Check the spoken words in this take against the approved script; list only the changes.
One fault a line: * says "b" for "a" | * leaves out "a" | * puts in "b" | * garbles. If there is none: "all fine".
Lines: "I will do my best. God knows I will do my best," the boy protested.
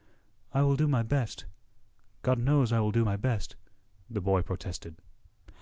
all fine